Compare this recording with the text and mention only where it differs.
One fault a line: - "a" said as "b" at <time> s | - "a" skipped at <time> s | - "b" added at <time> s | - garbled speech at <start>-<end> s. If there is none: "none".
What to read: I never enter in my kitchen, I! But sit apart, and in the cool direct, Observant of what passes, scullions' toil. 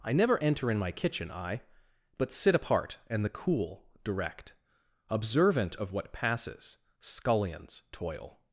- "in" skipped at 3.2 s